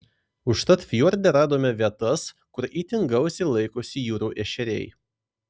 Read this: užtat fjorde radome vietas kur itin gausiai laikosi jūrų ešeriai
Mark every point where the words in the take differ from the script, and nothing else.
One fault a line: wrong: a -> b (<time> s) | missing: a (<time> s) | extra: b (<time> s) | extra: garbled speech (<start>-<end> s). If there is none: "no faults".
no faults